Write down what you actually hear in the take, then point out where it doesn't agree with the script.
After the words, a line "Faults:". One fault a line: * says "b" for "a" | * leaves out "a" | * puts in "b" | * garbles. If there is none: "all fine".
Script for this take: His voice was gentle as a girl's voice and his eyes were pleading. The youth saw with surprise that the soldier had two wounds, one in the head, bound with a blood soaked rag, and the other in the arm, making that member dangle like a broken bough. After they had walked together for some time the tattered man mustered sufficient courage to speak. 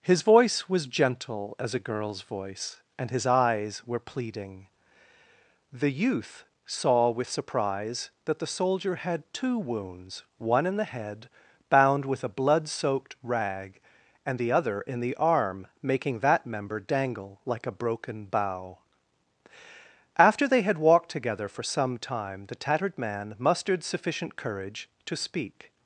His voice was gentle as a girl's voice and his eyes were pleading. The youth saw with surprise that the soldier had two wounds, one in the head, bound with a blood soaked rag, and the other in the arm, making that member dangle like a broken bough. After they had walked together for some time the tattered man mustered sufficient courage to speak.
Faults:
all fine